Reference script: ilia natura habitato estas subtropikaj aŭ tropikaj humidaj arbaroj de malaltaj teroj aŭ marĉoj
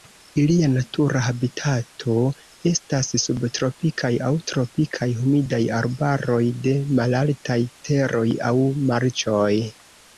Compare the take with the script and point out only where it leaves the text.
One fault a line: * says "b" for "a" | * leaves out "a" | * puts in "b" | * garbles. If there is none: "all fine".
all fine